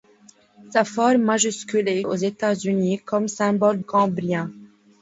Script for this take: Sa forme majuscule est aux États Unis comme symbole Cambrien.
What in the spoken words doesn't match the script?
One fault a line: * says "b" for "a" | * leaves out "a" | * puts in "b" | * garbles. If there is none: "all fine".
all fine